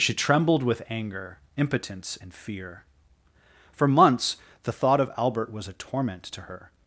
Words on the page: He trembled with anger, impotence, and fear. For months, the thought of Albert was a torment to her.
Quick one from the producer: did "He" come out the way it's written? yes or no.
no